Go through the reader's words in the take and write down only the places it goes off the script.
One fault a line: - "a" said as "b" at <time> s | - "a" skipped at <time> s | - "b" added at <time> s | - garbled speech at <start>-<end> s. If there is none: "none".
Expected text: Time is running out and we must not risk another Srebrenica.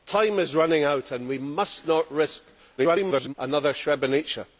- garbled speech at 2.8-3.3 s